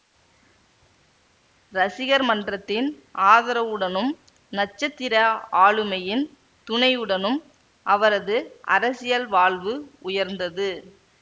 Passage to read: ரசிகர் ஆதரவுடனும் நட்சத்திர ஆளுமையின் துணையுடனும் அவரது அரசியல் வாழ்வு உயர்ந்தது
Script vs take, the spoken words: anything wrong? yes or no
yes